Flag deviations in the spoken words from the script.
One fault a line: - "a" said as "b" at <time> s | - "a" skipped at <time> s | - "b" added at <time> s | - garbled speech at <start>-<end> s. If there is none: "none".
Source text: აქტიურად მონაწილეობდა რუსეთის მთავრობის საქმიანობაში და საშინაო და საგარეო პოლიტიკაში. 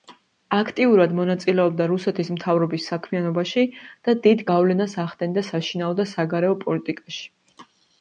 - "დიდ გავლენას ახდენდა" added at 4.3 s